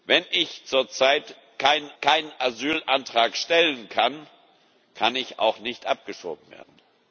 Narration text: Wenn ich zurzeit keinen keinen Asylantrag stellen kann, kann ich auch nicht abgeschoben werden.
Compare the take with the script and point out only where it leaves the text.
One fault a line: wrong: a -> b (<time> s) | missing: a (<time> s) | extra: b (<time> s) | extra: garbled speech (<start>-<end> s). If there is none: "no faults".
no faults